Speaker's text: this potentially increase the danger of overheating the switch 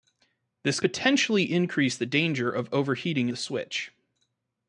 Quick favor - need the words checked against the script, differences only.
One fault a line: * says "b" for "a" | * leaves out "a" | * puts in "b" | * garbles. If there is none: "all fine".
all fine